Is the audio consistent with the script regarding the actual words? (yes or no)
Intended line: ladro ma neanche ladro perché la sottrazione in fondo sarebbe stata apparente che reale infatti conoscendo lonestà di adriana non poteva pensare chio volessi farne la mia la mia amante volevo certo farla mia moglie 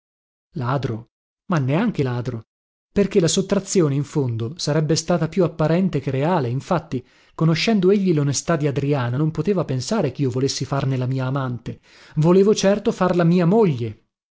no